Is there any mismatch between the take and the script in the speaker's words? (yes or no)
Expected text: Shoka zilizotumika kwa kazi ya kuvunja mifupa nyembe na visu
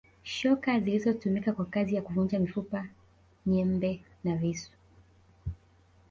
no